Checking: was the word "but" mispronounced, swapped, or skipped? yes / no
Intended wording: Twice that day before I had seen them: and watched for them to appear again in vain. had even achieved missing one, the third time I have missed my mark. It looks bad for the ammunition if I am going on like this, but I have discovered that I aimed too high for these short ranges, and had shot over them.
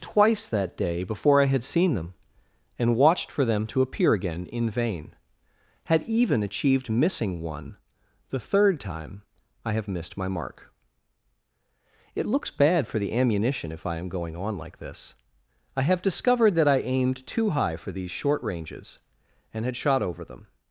yes